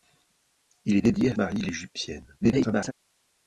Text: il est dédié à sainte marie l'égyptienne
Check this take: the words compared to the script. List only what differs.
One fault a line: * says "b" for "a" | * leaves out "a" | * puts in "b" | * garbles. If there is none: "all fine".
* leaves out "sainte"
* garbles